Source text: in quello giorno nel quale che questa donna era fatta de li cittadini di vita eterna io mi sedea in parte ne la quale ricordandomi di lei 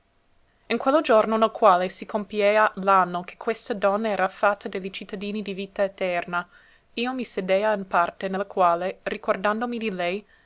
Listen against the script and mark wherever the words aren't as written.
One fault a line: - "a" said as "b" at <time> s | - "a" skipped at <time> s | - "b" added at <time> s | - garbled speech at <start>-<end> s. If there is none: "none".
- "si compiea l'anno" added at 1.9 s